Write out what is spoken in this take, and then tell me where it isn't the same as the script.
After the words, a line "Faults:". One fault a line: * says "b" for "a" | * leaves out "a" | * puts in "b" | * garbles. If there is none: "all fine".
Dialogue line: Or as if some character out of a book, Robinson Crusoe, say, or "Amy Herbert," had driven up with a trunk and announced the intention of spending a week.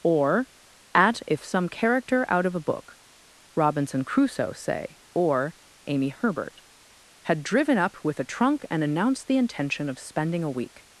Or at if some character out of a book, Robinson Crusoe, say, or "Amy Herbert," had driven up with a trunk and announced the intention of spending a week.
Faults:
* says "at" for "as"